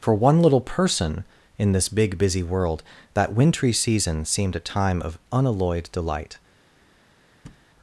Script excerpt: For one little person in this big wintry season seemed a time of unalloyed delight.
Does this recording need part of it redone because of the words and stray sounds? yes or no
yes